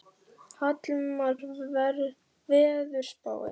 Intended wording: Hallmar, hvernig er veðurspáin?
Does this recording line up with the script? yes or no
no